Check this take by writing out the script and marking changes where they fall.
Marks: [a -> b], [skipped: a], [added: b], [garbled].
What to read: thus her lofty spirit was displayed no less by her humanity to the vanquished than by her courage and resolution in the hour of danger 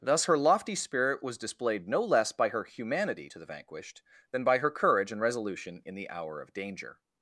thus her lofty spirit was displayed no less by her humanity to the vanquished than by her courage and resolution in the hour of danger